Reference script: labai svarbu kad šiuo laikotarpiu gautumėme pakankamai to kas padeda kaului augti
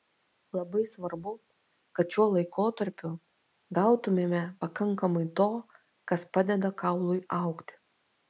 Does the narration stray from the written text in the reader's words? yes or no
no